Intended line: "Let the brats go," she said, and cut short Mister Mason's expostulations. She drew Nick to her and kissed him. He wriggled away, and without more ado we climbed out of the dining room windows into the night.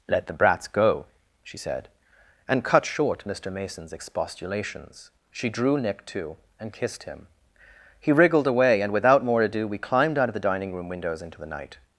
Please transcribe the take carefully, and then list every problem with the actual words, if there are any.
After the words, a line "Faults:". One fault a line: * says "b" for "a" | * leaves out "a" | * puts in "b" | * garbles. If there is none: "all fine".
"Let the brats go," she said, and cut short Mister Mason's expostulations. She drew Nick to and kissed him. He wriggled away, and without more ado we climbed out of the dining room windows into the night.
Faults:
* leaves out "her"